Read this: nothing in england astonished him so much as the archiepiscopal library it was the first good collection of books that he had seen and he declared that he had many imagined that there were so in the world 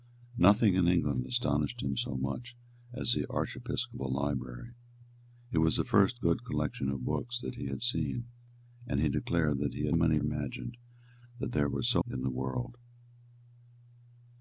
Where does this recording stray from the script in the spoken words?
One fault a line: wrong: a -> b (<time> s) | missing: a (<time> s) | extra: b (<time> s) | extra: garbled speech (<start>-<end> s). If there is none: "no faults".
no faults